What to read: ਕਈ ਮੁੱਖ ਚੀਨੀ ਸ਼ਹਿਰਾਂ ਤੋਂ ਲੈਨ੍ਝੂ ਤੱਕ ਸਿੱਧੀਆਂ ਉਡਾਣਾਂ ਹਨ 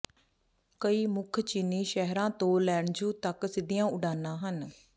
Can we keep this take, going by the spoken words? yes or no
yes